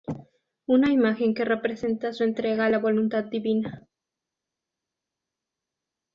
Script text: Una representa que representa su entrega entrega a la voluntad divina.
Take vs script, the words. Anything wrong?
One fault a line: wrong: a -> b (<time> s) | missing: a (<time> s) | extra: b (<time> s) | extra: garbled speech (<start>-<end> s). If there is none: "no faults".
wrong: representa -> imagen (0.9 s)
missing: entrega (2.6 s)